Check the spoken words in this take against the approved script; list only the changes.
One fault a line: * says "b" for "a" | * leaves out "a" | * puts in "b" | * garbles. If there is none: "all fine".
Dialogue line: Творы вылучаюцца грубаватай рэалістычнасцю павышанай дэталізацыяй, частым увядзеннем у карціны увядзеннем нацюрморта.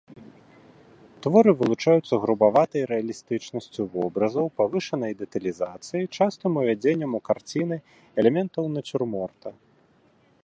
* puts in "вобразаў"
* says "элементаў" for "увядзеннем"